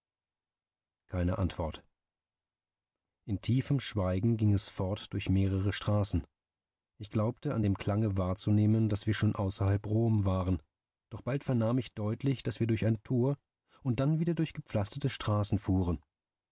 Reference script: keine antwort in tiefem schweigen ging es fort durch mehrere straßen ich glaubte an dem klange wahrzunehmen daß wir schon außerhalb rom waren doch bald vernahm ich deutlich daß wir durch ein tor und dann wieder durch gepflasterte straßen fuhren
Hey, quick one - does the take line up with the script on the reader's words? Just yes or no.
yes